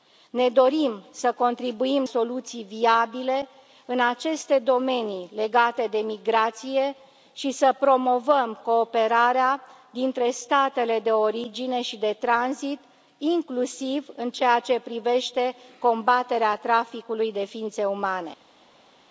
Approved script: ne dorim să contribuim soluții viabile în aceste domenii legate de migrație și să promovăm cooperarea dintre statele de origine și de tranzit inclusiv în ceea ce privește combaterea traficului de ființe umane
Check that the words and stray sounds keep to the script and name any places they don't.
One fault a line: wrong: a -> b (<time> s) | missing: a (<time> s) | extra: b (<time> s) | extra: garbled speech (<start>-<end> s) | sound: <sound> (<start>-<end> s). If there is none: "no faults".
no faults